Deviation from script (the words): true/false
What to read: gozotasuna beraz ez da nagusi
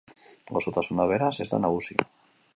false